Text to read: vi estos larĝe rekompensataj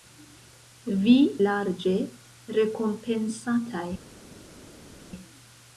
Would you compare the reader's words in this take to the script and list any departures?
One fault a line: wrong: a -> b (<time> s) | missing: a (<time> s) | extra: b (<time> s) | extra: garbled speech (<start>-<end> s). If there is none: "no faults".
missing: estos (1.1 s)